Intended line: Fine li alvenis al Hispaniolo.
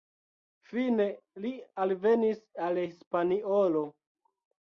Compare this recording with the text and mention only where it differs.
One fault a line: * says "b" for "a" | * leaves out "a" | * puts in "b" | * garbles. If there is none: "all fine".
all fine